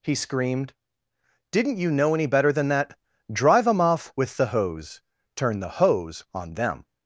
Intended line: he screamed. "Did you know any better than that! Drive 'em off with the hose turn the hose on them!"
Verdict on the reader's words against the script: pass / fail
fail